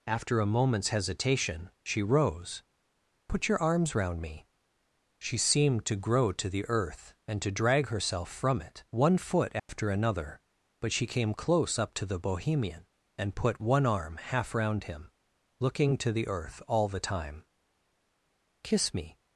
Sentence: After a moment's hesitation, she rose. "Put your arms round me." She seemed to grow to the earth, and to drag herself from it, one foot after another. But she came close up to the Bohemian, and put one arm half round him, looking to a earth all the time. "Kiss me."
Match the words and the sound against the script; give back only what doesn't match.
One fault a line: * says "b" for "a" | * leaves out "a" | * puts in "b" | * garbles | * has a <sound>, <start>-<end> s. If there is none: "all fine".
* has a dropout, 9.6-9.7 s
* says "the" for "a"